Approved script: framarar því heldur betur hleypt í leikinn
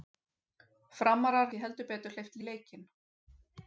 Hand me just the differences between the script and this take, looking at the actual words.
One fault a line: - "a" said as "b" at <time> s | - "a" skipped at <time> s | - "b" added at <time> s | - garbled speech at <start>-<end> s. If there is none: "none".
none